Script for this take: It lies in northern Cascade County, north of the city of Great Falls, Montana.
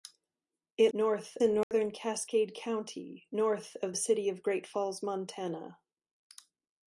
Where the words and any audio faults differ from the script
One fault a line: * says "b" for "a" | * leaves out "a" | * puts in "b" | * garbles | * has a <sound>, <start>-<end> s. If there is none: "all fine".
* says "north" for "lies"
* has a dropout, 1.6-1.7 s
* leaves out "the"